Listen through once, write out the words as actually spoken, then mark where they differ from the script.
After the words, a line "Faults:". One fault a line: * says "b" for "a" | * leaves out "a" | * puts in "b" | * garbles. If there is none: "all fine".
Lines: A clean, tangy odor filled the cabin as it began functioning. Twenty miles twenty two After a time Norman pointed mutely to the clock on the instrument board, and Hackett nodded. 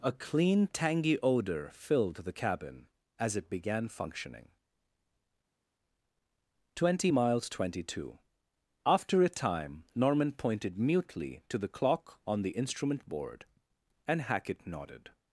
A clean, tangy odor filled the cabin as it began functioning. Twenty miles twenty two After a time Norman pointed mutely to the clock on the instrument board, and Hackett nodded.
Faults:
all fine